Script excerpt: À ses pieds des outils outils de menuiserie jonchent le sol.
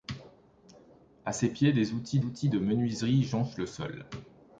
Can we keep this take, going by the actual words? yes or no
yes